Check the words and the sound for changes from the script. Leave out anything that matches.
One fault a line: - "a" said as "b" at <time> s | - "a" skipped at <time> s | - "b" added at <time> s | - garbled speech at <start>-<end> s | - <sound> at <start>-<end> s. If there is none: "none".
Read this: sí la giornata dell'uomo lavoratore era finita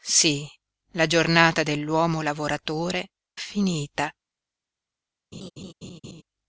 - "era" skipped at 3.1 s
- laugh at 5.3-6.2 s